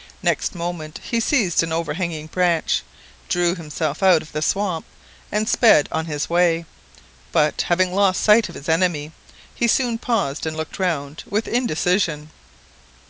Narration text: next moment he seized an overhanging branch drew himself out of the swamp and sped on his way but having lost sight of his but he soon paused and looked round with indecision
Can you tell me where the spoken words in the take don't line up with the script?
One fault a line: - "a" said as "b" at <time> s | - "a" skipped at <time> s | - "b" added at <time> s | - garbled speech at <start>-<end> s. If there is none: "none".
- "but" said as "enemy" at 8.7 s